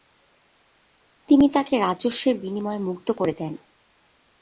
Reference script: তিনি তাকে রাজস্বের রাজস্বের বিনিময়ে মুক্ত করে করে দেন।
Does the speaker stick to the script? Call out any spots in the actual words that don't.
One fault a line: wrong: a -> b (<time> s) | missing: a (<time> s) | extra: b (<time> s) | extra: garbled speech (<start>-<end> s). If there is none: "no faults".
missing: রাজস্বের (2.4 s)
missing: করে (3.3 s)